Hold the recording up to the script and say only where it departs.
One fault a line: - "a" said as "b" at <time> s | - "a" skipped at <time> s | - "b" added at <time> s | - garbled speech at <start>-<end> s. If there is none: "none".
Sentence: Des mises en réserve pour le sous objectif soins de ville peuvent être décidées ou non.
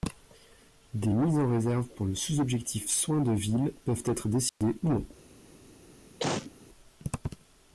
none